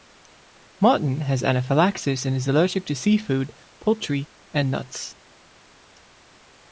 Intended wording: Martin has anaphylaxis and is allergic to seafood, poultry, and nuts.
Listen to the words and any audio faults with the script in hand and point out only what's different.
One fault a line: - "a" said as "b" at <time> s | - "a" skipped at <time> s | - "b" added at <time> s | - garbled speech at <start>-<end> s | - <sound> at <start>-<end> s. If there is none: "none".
none